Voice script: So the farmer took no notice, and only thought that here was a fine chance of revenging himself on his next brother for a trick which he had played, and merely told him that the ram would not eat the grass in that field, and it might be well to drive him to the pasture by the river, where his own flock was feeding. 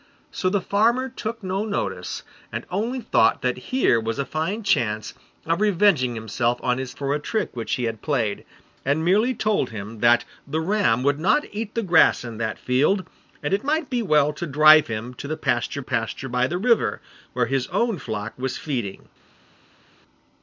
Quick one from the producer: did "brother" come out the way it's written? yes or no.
no